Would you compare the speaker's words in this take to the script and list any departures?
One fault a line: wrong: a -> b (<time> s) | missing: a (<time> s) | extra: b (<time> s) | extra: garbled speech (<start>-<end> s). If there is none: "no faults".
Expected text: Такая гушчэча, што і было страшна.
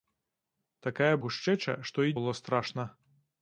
no faults